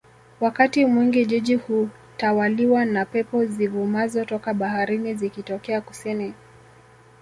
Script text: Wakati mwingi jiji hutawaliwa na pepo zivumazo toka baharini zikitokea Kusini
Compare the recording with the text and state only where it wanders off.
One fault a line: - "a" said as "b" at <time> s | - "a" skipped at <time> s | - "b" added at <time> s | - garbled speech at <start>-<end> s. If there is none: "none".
none